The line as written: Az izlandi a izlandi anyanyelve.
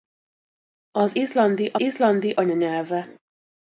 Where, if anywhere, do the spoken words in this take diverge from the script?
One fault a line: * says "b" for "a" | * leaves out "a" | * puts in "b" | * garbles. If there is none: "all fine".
all fine